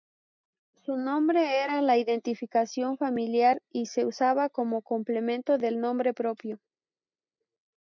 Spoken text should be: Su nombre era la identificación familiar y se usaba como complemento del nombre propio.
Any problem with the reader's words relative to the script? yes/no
no